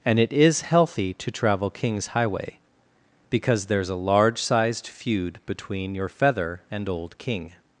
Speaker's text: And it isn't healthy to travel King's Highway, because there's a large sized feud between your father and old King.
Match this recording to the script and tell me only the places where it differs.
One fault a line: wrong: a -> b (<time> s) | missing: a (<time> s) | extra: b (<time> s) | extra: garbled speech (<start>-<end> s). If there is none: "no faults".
wrong: isn't -> is (0.3 s)
wrong: father -> feather (6.1 s)